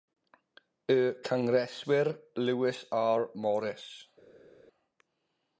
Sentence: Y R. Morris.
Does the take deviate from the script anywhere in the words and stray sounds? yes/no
yes